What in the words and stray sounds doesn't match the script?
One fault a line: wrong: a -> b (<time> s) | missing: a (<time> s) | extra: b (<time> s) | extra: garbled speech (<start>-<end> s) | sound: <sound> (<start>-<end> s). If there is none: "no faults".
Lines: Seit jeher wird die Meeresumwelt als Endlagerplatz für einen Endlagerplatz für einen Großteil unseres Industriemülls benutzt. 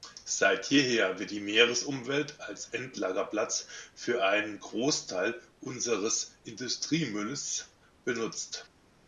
missing: Endlagerplatz für einen (4.6 s)